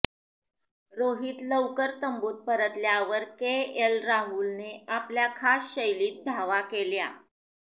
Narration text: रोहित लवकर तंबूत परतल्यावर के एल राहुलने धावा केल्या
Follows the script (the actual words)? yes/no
no